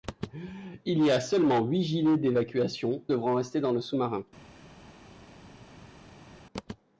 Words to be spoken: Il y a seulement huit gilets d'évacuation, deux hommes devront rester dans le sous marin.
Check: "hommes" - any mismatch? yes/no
yes